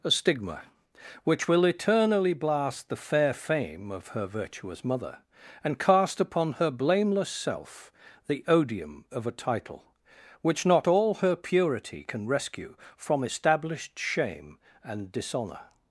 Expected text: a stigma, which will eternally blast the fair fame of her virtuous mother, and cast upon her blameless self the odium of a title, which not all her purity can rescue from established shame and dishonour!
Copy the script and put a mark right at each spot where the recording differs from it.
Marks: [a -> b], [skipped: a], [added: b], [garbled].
a stigma, which will eternally blast the fair fame of her virtuous mother, and cast upon her blameless self the odium of a title, which not all her purity can rescue from established shame and dishonour!